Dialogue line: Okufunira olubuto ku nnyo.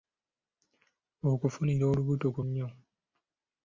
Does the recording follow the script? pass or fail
pass